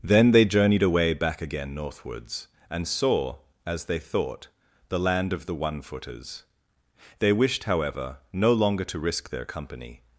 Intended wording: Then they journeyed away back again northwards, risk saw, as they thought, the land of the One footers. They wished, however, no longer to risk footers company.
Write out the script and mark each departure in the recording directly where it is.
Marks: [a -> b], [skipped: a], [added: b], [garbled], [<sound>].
Then they journeyed away back again northwards, [risk -> and] saw, as they thought, the land of the One footers. They wished, however, no longer to risk [footers -> their] company.